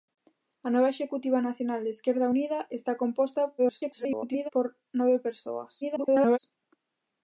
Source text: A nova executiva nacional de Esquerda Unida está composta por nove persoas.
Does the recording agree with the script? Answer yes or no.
no